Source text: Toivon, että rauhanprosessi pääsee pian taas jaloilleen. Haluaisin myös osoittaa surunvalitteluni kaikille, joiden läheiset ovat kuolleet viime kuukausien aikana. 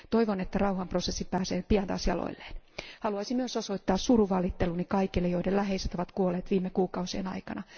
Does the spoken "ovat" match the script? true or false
true